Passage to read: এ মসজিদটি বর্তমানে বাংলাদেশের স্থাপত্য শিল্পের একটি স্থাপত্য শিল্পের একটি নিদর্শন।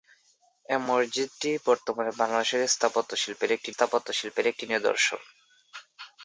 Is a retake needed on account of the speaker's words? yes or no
no